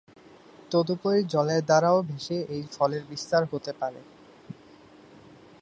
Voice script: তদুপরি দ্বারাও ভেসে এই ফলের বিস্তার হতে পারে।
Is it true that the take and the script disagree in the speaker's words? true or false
true